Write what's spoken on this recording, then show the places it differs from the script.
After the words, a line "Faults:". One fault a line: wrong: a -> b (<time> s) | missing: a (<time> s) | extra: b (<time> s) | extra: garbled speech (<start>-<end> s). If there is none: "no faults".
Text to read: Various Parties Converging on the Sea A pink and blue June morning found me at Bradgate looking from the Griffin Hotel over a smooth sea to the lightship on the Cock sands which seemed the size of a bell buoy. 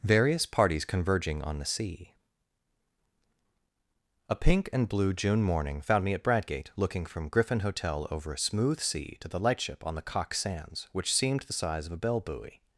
Various Parties Converging on the Sea A pink and blue June morning found me at Bradgate looking from Griffin Hotel over a smooth sea to the lightship on the Cock sands which seemed the size of a bell buoy.
Faults:
missing: the (7.3 s)